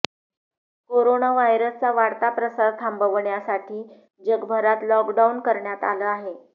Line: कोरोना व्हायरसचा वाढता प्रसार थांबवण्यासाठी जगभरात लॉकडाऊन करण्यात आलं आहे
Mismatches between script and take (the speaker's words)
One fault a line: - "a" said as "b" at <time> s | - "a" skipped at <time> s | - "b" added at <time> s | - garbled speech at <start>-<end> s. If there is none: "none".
none